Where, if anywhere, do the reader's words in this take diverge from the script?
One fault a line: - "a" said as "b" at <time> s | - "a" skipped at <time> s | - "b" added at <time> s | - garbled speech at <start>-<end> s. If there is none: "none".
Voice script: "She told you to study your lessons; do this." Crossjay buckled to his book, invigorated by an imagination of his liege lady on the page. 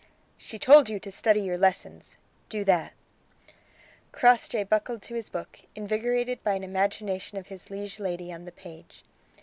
- "this" said as "that" at 2.6 s